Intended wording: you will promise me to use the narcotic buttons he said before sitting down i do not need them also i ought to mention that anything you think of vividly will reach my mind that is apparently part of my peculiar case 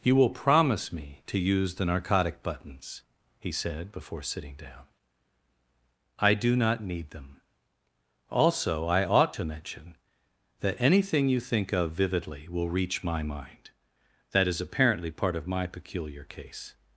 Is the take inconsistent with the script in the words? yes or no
no